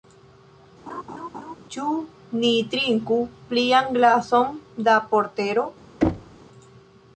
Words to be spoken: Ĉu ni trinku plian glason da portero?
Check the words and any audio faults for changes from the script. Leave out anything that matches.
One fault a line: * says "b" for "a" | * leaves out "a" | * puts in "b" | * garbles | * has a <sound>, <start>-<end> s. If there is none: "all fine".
* has a laugh, 0.9-1.6 s
* has a thud, 6.0-6.4 s